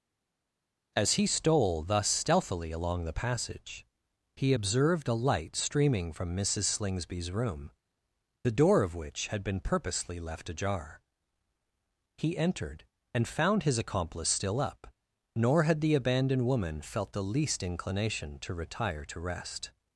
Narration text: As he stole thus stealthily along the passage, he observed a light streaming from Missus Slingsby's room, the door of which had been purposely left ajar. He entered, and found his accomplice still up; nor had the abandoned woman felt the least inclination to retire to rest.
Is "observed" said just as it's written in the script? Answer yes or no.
yes